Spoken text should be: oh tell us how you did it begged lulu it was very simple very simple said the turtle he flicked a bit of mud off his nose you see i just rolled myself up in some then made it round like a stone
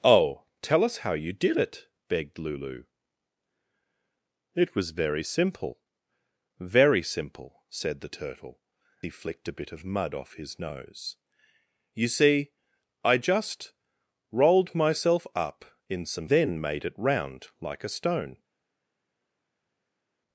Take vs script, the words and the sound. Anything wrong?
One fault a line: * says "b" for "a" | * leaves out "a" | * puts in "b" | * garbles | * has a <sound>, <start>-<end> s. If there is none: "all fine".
all fine